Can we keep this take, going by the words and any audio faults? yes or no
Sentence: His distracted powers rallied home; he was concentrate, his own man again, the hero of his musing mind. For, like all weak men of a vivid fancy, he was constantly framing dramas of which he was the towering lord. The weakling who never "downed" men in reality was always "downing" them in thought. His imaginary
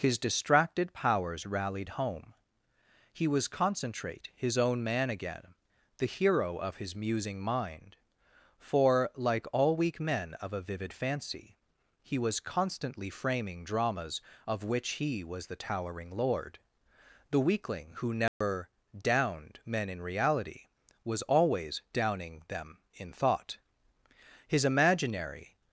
no